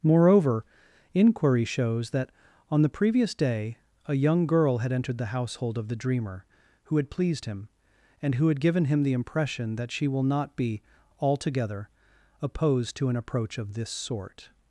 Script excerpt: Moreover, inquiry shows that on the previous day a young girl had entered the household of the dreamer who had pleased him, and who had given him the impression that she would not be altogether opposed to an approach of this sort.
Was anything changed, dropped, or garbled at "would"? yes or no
yes